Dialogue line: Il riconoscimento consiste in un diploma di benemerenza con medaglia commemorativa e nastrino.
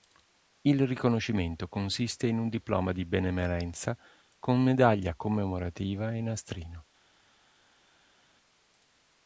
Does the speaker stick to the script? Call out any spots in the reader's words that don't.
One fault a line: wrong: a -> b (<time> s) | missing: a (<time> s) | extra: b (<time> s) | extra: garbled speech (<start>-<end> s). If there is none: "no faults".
no faults